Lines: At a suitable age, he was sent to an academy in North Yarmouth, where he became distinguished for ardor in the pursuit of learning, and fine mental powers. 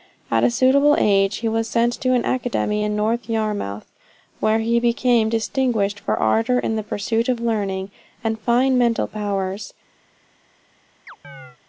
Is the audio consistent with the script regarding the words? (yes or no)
yes